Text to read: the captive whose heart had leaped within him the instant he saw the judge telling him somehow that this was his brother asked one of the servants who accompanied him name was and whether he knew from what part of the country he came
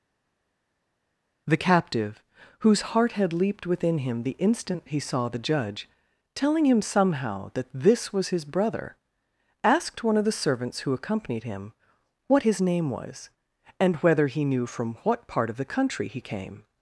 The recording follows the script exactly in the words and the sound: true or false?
false